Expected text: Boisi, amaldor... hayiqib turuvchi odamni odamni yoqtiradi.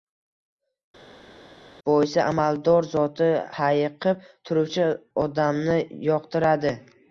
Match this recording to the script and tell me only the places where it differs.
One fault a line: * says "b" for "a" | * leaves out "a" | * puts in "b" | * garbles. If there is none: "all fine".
* puts in "zoti"
* leaves out "odamni"